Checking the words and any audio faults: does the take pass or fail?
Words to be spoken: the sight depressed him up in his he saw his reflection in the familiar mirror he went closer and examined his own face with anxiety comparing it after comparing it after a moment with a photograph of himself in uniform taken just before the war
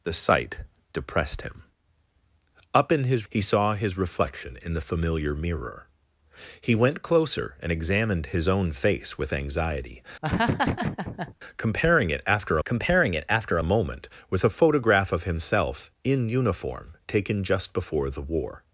fail